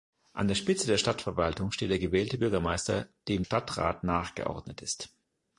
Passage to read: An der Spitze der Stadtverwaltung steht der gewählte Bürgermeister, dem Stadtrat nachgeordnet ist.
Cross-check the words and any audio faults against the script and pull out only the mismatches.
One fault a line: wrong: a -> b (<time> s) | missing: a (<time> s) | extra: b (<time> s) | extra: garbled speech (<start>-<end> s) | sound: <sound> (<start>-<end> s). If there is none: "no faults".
no faults